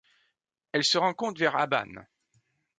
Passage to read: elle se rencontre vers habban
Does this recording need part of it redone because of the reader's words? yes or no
no